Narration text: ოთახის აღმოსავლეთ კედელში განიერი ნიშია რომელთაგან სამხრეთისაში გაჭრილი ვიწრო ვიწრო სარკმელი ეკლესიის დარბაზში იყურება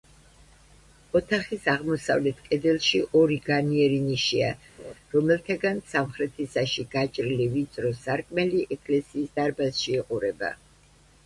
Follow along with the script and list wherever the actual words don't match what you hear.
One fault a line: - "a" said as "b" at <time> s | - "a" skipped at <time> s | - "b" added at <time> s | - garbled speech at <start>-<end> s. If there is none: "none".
- "ორი" added at 3.2 s
- "ვიწრო" skipped at 8.0 s